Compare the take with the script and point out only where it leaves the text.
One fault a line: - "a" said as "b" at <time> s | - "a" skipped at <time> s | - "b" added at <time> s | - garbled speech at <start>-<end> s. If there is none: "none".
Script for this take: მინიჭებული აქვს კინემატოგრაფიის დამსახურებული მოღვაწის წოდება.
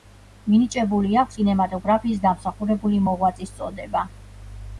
none